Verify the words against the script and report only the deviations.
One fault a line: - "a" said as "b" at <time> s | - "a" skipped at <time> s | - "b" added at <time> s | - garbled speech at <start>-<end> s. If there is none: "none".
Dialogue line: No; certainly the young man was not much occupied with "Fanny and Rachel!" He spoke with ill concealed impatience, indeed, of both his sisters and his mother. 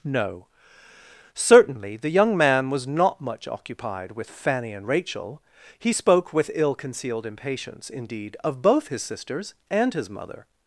none